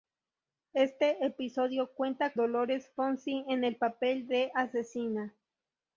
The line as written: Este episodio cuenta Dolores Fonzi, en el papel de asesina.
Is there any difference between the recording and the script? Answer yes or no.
no